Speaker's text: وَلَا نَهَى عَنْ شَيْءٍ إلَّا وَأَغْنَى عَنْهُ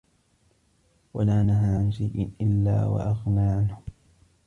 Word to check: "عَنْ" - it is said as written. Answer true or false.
true